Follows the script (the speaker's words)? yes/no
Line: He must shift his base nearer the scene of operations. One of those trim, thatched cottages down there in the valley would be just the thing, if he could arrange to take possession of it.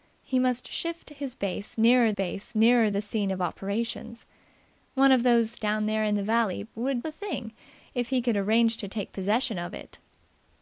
no